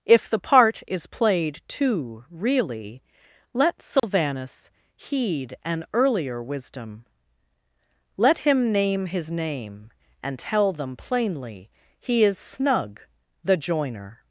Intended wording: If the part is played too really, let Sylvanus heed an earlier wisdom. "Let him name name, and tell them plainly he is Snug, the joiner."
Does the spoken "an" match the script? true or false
true